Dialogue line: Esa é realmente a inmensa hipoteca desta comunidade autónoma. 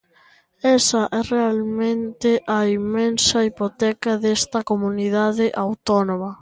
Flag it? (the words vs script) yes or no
no